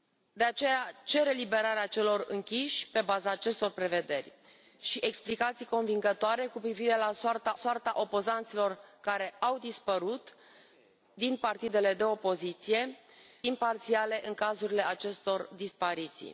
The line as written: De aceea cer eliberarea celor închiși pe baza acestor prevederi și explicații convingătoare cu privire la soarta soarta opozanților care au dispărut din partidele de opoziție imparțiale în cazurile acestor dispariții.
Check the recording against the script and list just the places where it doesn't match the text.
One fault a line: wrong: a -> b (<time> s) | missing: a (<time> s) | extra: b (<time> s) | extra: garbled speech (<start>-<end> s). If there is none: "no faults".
no faults